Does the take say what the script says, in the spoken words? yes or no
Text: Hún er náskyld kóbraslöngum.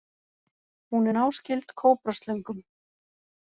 yes